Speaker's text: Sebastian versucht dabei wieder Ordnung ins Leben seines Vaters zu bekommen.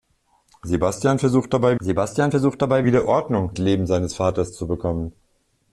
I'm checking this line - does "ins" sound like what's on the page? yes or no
no